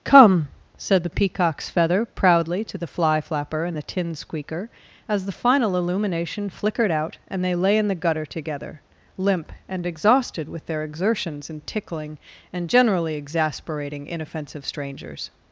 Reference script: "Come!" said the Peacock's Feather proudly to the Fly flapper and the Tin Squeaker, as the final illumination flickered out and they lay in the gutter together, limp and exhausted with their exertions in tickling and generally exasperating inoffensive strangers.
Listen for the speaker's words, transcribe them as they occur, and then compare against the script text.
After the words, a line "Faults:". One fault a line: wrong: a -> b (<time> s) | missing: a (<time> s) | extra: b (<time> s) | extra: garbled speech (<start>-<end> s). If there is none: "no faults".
"Come!" said the Peacock's Feather proudly to the Fly flapper and the Tin Squeaker, as the final illumination flickered out and they lay in the gutter together, limp and exhausted with their exertions in tickling and generally exasperating inoffensive strangers.
Faults:
no faults